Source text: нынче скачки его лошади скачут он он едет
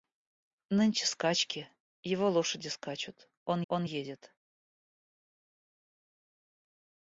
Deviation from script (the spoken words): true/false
false